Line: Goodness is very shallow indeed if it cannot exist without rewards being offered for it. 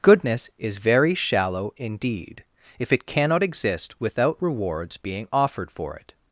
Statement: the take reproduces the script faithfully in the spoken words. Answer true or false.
true